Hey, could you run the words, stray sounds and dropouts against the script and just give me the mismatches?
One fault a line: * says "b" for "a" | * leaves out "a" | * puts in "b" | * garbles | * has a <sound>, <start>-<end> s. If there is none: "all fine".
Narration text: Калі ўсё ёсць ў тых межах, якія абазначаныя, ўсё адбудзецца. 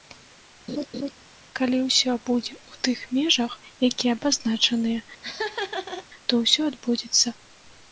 * has a laugh, 0.7-1.1 s
* says "будзе" for "ёсць"
* has a laugh, 5.2-6.1 s
* puts in "то"